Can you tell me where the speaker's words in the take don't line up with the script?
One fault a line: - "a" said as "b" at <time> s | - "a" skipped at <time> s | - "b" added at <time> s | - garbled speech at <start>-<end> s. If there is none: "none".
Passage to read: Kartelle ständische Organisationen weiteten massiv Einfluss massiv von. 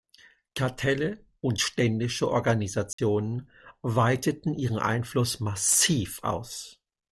- "und" added at 1.4 s
- "massiv" said as "ihren" at 4.5 s
- "von" said as "aus" at 6.2 s